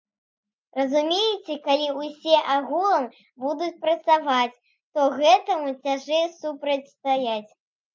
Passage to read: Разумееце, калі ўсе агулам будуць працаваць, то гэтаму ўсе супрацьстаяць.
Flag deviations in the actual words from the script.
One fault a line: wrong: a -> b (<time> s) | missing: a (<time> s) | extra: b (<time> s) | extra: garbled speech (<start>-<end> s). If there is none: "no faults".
wrong: ўсе -> цяжэй (5.8 s)